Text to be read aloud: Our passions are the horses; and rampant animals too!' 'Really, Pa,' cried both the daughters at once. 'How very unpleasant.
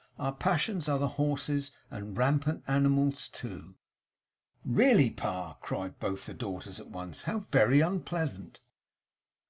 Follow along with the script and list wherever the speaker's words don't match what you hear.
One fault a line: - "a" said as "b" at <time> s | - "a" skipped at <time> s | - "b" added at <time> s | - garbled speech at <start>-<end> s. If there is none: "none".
none